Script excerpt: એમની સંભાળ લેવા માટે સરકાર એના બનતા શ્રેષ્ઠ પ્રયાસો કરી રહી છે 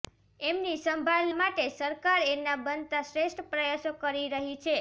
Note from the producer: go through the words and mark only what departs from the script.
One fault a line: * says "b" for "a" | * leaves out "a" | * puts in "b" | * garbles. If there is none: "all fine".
* leaves out "લેવા"